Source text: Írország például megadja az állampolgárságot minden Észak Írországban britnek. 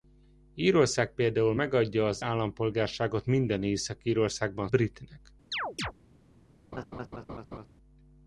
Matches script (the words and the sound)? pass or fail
fail